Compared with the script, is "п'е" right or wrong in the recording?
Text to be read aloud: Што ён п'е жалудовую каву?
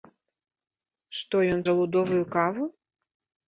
wrong